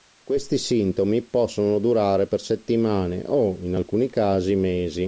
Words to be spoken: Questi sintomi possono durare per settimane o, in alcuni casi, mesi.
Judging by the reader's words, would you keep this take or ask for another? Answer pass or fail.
pass